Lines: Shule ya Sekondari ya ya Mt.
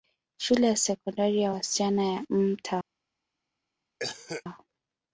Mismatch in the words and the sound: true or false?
true